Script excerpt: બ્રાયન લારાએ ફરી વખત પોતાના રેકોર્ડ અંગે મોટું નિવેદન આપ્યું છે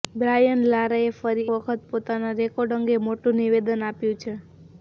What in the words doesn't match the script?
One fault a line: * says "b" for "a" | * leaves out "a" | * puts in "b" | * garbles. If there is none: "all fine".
all fine